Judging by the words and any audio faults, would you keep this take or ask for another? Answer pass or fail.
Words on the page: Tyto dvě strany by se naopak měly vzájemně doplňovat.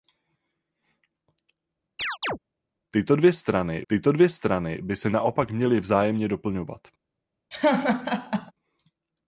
fail